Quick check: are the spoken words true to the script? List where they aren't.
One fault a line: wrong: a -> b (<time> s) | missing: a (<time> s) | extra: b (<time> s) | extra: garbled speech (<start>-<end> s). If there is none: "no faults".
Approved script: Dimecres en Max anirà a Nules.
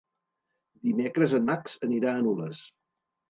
no faults